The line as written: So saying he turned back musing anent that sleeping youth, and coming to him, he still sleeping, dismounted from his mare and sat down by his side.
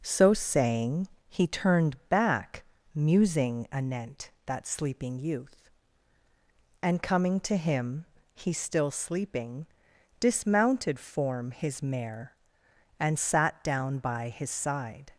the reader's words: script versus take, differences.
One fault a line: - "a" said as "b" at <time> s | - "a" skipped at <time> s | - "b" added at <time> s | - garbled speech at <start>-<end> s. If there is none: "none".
- "from" said as "form" at 11.0 s